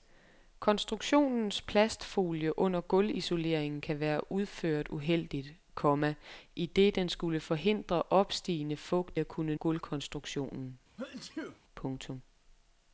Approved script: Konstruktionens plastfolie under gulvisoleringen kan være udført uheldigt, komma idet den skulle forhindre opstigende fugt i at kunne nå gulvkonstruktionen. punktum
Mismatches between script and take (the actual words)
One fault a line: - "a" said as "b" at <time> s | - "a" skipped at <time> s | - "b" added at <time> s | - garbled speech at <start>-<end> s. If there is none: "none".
- "i" skipped at 9.2 s
- "nå" skipped at 9.5 s